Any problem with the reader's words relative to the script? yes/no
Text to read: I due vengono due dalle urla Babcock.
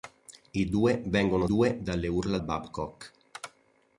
no